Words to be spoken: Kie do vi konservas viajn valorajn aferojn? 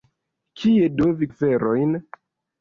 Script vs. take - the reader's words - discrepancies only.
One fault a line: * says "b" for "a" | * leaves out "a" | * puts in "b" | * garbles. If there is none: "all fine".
* leaves out "konservas viajn valorajn"